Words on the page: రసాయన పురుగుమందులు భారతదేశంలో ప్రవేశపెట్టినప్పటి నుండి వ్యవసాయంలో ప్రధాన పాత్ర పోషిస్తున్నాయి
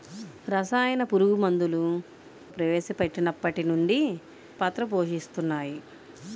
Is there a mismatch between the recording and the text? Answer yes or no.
yes